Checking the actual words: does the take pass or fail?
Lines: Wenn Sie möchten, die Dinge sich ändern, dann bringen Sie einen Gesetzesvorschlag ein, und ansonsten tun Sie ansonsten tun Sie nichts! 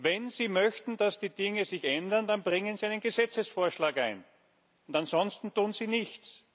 fail